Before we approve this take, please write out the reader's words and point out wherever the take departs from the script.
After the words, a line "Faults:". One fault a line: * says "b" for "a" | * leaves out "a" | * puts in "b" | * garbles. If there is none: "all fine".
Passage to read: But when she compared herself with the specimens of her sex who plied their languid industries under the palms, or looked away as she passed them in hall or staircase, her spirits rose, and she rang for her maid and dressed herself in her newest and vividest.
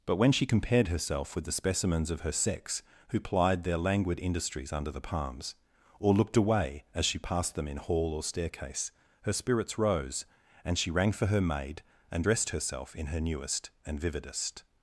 But when she compared herself with the specimens of her sex who plied their languid industries under the palms, or looked away as she passed them in hall or staircase, her spirits rose, and she rang for her maid and dressed herself in her newest and vividest.
Faults:
all fine